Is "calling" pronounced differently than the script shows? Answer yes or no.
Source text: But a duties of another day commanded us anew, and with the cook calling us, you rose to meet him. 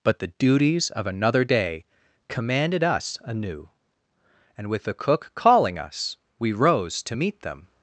no